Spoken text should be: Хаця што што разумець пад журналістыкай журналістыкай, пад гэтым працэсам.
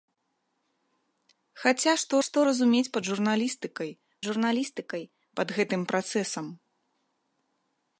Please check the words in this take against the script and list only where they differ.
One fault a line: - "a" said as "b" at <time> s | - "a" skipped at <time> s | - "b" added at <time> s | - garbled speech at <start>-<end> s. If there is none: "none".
none